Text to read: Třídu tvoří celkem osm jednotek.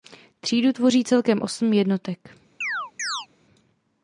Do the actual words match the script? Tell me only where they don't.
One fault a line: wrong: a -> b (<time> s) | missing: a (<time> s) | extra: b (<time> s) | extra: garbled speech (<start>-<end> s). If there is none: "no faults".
no faults